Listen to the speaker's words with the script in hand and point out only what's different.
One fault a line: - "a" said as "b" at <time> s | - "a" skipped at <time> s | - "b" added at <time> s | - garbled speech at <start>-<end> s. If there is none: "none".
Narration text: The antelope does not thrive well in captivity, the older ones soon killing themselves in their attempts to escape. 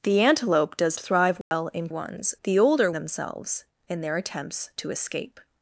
- "not" skipped at 1.0 s
- "captivity" said as "ones" at 1.9 s
- "ones soon killing" skipped at 2.9 s